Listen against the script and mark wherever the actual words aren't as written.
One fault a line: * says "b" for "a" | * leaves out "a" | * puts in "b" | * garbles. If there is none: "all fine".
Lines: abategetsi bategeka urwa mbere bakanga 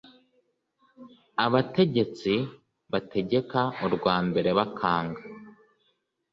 all fine